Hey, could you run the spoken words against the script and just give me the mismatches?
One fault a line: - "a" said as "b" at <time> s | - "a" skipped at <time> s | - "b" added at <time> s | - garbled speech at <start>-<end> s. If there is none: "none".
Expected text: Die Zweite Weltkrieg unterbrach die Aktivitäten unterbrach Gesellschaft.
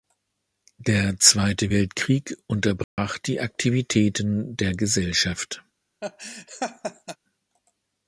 - "Die" said as "Der" at 0.8 s
- "unterbrach" said as "der" at 4.5 s